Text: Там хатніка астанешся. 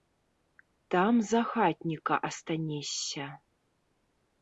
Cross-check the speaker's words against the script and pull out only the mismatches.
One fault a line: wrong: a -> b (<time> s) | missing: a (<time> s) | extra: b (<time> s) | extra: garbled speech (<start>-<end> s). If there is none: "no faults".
extra: за (1.2 s)